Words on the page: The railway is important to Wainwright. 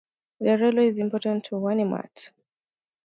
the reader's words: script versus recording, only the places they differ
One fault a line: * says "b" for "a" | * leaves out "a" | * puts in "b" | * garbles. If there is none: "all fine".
all fine